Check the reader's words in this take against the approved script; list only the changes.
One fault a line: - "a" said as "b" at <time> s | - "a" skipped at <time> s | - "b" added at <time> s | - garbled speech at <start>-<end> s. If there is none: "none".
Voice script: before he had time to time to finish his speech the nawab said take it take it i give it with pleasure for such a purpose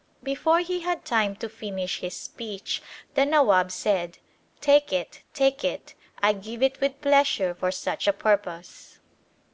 - "time to" skipped at 1.5 s